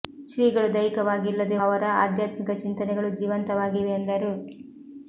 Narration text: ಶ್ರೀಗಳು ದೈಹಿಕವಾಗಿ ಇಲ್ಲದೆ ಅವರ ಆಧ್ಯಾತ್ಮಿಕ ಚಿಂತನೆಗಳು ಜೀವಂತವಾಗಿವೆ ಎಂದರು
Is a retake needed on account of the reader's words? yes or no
no